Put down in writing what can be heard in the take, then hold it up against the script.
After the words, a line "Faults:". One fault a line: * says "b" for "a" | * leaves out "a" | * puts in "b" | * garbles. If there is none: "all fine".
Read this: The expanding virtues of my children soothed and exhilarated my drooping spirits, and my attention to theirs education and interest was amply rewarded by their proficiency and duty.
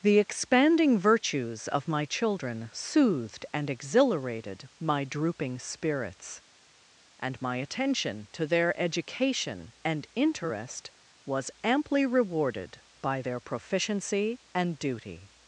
The expanding virtues of my children soothed and exhilarated my drooping spirits, and my attention to their education and interest was amply rewarded by their proficiency and duty.
Faults:
* says "their" for "theirs"